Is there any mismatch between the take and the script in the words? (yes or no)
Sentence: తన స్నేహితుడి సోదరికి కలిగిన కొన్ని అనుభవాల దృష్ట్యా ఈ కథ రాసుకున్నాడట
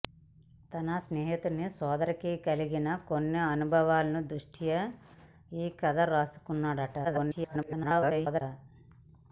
yes